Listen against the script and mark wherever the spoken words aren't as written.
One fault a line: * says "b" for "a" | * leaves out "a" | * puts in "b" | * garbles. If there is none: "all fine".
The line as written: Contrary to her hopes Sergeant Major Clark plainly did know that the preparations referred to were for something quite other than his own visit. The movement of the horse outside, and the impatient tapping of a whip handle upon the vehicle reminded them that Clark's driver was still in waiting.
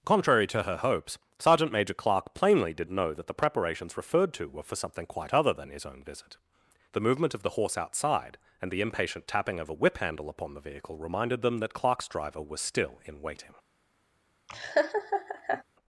all fine